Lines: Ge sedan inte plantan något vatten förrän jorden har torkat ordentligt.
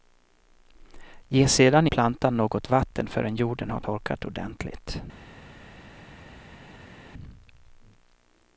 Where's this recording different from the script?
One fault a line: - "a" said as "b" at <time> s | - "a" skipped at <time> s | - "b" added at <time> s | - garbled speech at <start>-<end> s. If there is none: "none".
- "inte" skipped at 1.9 s